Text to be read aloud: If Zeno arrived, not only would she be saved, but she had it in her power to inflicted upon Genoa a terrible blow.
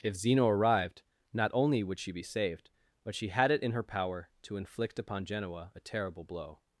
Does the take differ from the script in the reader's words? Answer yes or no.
yes